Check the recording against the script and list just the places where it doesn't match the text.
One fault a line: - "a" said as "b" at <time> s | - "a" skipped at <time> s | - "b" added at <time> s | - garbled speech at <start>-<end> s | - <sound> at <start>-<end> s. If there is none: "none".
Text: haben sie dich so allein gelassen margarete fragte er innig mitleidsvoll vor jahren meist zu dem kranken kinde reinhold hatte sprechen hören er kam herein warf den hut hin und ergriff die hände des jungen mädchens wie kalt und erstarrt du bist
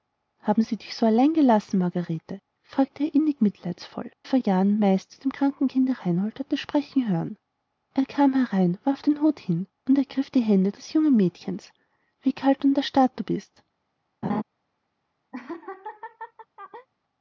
- laugh at 14.2-14.4 s
- laugh at 15.3-16.9 s